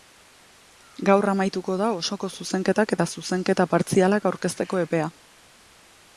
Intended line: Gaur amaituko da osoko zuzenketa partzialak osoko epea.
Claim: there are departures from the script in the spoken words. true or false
true